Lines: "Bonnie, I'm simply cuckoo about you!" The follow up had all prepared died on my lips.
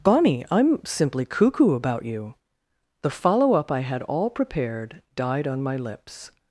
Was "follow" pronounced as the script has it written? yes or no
yes